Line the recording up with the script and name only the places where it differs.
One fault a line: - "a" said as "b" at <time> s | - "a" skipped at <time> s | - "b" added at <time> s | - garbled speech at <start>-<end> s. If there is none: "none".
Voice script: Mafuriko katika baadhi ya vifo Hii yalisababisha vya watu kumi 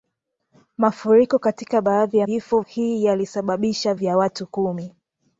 none